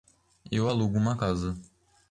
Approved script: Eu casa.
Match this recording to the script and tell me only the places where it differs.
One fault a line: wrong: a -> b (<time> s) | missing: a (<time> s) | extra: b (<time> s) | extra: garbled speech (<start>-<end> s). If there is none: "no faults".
extra: alugo uma (0.6 s)